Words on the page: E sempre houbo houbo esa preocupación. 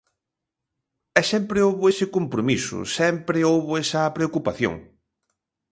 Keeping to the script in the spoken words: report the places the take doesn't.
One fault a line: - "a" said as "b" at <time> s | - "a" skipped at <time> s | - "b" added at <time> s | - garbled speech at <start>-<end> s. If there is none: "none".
- "ese compromiso sempre" added at 1.9 s